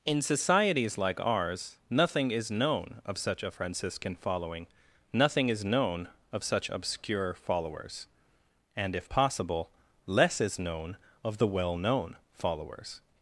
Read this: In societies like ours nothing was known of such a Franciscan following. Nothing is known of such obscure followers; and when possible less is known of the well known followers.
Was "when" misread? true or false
true